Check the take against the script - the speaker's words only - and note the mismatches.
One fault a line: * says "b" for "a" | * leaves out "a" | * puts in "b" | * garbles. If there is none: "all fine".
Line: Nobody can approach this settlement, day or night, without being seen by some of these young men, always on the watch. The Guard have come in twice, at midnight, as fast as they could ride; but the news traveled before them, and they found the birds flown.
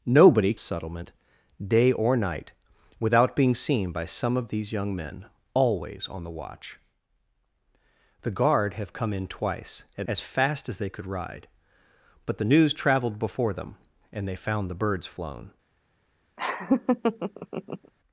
* leaves out "can approach this"
* leaves out "midnight"